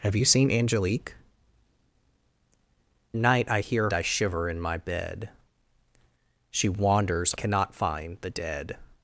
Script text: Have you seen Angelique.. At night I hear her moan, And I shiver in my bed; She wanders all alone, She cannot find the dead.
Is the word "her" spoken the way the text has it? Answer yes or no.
no